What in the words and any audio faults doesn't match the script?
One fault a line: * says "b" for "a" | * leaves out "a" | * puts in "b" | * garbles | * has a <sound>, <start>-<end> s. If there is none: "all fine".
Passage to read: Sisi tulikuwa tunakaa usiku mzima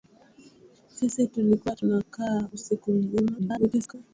* garbles